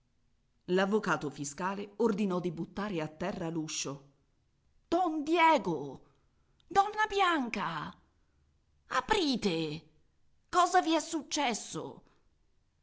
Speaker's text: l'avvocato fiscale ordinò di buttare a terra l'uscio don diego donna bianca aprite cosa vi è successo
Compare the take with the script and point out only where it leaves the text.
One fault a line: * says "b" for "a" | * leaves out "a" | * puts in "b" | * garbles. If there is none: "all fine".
all fine